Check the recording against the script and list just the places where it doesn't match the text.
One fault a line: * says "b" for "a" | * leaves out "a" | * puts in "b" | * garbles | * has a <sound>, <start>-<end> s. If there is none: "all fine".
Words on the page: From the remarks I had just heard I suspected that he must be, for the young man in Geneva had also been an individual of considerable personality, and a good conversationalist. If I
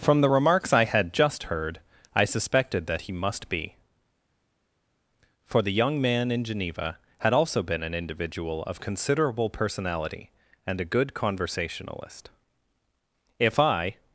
all fine